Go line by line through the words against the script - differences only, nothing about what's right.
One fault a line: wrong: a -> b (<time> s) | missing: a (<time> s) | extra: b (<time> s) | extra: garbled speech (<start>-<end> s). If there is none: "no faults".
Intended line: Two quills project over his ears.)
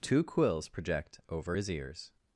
no faults